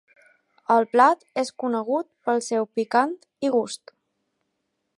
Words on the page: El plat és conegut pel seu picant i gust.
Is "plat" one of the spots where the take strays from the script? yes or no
no